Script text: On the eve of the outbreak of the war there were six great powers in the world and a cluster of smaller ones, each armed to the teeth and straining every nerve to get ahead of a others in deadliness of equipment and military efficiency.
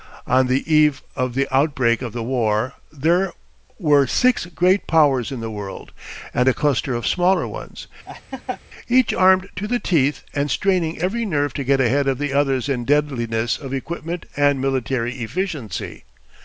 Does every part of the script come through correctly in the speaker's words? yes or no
no